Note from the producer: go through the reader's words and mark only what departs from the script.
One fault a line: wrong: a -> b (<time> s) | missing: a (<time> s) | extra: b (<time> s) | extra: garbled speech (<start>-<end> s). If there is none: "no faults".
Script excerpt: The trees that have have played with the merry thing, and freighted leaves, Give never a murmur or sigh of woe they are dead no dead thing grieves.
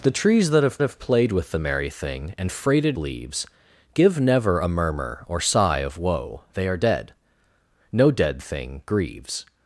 no faults